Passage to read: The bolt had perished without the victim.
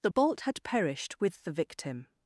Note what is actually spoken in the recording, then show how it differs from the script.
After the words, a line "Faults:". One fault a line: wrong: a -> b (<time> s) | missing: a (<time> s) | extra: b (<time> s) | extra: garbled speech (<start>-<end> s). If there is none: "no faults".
The bolt had perished with the victim.
Faults:
wrong: without -> with (1.2 s)